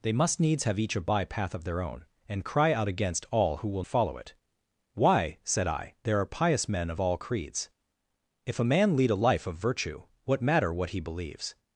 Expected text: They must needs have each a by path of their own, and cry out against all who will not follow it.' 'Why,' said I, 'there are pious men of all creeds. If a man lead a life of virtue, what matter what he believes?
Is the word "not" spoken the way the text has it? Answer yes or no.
no